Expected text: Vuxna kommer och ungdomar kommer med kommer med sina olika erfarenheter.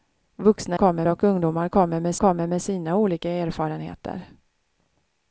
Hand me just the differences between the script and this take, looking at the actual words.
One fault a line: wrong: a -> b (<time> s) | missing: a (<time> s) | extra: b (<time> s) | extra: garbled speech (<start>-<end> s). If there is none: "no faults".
no faults